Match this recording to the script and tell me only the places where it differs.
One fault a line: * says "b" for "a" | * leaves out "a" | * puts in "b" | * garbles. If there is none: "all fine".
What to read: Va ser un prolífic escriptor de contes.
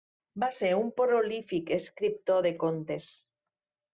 all fine